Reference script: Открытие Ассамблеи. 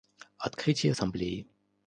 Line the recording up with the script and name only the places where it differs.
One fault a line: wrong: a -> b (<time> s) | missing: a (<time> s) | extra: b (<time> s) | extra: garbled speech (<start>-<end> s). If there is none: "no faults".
no faults